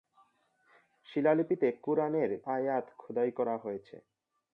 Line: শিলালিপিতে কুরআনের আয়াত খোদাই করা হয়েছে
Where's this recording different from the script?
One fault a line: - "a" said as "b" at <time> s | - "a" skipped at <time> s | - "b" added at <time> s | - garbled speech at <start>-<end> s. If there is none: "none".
none